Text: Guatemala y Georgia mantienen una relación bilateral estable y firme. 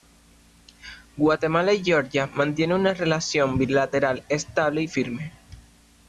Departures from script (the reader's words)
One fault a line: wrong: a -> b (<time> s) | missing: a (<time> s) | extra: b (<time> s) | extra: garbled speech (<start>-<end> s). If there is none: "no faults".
no faults